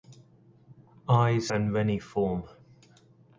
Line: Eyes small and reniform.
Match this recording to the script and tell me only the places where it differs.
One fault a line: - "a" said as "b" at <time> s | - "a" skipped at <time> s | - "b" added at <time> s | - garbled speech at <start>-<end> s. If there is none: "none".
- "small" skipped at 1.5 s